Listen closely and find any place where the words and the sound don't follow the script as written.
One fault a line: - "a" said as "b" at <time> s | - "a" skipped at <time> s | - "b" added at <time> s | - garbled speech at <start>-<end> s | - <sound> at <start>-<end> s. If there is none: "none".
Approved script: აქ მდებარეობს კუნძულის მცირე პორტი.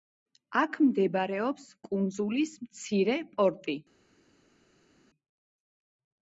none